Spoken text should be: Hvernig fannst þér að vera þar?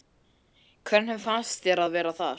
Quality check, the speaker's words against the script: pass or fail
pass